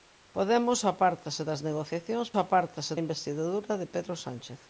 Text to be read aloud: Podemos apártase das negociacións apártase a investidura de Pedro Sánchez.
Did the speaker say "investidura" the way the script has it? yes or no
yes